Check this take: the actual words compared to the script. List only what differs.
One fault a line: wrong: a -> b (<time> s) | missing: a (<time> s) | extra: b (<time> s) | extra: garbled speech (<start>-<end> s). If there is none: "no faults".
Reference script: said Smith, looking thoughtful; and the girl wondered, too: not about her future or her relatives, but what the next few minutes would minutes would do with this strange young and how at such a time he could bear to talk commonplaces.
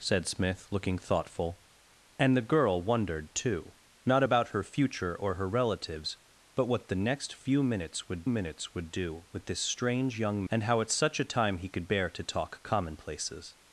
no faults